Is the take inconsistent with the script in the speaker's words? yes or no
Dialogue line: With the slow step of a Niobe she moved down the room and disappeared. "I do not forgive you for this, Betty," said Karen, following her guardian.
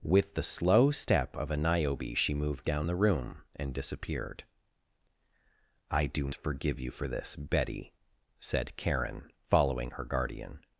yes